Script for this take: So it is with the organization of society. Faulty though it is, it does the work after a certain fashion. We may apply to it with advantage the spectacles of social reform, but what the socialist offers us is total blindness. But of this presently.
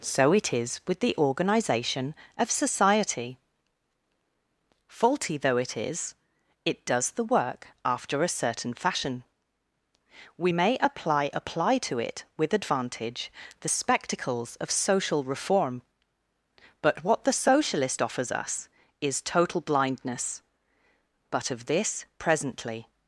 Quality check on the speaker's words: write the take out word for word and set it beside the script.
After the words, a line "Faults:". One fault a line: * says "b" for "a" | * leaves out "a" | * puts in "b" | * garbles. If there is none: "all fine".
So it is with the organization of society. Faulty though it is, it does the work after a certain fashion. We may apply apply to it with advantage the spectacles of social reform, but what the socialist offers us is total blindness. But of this presently.
Faults:
* puts in "apply"